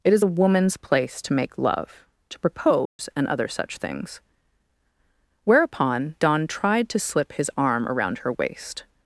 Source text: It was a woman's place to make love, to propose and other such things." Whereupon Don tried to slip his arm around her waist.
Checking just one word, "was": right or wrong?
wrong